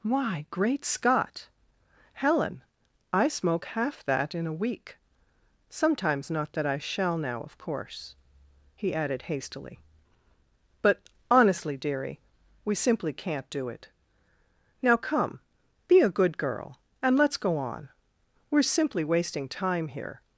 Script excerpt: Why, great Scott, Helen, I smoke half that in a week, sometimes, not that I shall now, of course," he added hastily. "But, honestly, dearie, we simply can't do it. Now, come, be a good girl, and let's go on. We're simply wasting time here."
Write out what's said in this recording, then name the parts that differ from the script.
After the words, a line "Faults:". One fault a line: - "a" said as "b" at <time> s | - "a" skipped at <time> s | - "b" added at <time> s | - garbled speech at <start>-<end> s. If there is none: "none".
Why, great Scott, Helen, I smoke half that in a week, sometimes, not that I shall now, of course," he added hastily. "But, honestly, dearie, we simply can't do it. Now, come, be a good girl, and let's go on. We're simply wasting time here."
Faults:
none